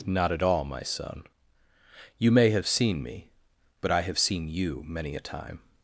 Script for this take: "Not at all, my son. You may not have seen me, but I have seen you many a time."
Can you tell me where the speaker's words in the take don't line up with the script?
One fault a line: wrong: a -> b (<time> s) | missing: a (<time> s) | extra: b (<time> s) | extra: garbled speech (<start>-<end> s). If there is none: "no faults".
missing: not (2.5 s)